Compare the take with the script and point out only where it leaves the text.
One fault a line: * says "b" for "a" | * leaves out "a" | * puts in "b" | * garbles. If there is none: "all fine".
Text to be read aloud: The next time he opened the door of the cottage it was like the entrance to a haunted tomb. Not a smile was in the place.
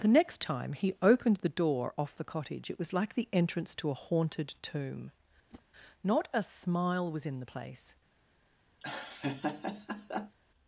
* says "off" for "of"